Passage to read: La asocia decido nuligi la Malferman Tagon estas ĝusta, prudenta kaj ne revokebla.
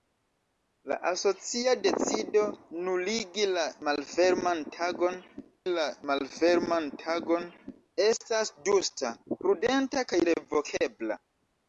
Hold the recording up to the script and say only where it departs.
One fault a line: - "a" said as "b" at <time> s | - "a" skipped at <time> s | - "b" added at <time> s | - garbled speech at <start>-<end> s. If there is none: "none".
- "la Malferman Tagon" added at 5.7 s
- "ne" skipped at 10.2 s